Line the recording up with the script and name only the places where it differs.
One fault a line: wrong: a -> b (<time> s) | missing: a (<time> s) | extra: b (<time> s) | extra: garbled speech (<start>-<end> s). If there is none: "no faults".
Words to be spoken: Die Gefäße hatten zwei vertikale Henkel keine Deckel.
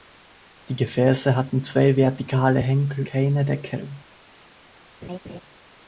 no faults